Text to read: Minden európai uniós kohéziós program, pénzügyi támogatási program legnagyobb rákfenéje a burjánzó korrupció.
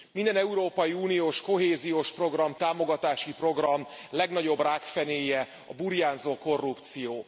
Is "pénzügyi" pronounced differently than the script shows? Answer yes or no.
yes